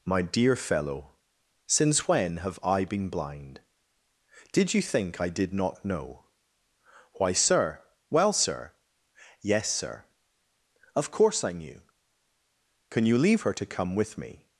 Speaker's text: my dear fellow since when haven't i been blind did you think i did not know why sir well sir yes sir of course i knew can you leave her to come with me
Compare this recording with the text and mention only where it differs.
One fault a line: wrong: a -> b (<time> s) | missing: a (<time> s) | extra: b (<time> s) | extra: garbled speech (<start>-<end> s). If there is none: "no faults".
wrong: haven't -> have (2.4 s)